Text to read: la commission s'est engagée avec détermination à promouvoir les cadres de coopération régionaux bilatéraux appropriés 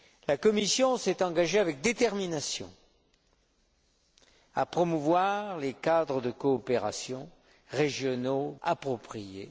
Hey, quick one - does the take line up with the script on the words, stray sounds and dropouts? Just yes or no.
no